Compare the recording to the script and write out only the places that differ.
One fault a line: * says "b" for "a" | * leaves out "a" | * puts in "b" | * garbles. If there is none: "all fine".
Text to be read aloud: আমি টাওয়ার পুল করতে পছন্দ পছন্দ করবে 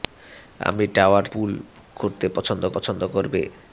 all fine